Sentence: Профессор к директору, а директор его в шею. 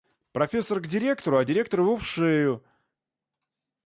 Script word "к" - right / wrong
right